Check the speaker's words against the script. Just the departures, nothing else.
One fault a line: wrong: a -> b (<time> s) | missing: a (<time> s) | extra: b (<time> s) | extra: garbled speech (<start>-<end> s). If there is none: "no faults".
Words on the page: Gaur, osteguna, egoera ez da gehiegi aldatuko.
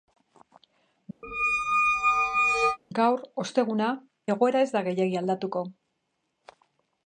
no faults